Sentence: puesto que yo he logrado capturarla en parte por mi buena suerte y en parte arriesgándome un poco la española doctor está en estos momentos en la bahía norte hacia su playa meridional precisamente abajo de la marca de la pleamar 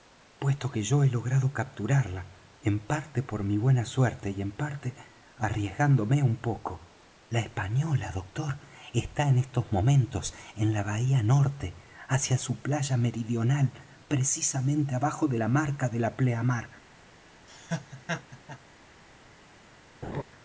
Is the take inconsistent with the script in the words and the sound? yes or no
yes